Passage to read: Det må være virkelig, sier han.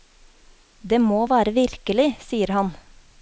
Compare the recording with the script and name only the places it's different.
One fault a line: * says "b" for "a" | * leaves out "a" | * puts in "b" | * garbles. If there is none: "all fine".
all fine